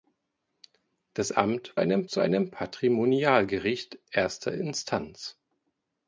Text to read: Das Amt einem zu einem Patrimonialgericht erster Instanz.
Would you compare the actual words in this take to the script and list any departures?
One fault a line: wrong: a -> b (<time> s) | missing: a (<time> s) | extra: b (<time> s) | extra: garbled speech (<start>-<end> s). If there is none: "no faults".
no faults